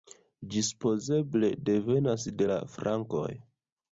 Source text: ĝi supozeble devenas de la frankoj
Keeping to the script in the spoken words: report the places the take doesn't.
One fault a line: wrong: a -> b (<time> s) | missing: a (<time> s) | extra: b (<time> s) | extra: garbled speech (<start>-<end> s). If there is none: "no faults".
no faults